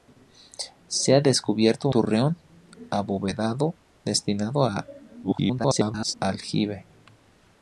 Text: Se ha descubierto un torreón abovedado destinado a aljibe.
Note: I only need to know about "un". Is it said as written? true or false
false